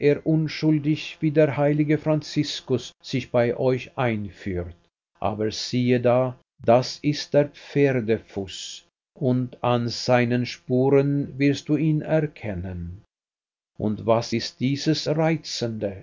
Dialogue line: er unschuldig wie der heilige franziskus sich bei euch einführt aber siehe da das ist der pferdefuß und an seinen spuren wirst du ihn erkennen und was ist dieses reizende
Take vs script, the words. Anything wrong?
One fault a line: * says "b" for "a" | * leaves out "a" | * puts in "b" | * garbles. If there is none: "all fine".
all fine